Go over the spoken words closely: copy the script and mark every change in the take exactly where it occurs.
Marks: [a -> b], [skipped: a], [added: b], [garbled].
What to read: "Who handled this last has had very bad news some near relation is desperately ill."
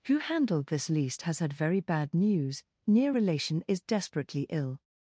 "Who handled this [last -> least] has had very bad news [skipped: some] near relation is desperately ill."